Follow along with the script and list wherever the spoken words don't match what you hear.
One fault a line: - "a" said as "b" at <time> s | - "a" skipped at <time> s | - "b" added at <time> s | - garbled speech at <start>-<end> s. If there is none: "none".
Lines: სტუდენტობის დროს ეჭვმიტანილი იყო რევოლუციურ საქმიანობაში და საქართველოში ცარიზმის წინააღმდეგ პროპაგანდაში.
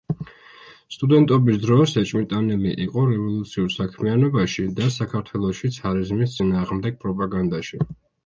none